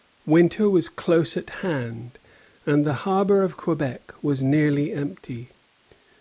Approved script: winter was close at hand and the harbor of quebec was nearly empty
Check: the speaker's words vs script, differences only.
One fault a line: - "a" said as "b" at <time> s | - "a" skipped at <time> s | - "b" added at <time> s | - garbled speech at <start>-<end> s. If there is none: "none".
none